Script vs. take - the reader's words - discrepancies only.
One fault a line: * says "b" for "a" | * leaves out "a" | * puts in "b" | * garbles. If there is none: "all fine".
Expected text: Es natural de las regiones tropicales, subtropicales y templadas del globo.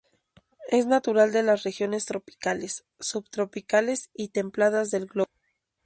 all fine